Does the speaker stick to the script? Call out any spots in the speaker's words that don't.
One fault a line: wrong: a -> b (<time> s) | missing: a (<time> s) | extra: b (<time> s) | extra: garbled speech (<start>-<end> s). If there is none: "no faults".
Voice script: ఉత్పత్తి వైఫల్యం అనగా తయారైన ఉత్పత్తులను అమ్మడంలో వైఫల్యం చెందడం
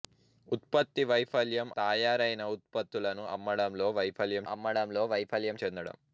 missing: అనగా (1.7 s)
extra: అమ్మడంలో వైఫల్యం (4.5 s)